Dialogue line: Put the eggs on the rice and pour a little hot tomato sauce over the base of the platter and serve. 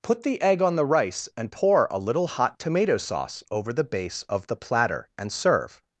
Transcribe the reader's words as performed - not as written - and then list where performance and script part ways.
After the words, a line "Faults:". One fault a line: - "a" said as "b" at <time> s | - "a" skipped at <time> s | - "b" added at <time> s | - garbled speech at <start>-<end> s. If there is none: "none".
Put the egg on the rice and pour a little hot tomato sauce over the base of the platter and serve.
Faults:
- "eggs" said as "egg" at 0.4 s